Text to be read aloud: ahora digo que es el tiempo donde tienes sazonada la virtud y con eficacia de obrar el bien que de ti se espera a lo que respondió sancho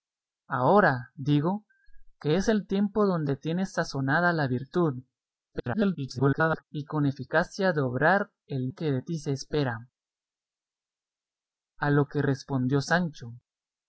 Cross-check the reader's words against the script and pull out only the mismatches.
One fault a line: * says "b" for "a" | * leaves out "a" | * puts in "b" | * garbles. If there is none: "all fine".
* garbles
* leaves out "bien"